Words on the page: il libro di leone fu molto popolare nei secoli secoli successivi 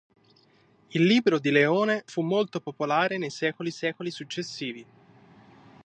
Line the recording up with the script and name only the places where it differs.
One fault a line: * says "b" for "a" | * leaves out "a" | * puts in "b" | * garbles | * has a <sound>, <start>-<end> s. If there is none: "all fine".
all fine